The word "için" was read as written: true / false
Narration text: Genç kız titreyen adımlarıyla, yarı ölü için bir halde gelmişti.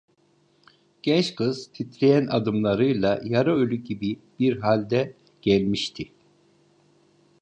false